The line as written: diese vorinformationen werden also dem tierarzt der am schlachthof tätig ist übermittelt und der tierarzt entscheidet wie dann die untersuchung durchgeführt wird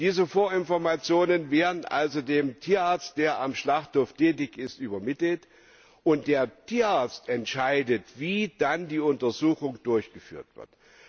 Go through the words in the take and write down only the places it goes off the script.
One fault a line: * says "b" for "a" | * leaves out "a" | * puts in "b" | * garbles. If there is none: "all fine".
all fine